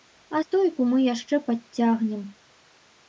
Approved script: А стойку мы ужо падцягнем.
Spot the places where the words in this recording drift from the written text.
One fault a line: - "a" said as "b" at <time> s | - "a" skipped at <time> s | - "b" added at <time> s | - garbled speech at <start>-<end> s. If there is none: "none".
- "ужо" said as "яшчэ" at 1.0 s